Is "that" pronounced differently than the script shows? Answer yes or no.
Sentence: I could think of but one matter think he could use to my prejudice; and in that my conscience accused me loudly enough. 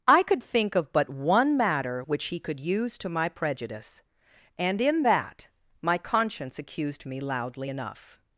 no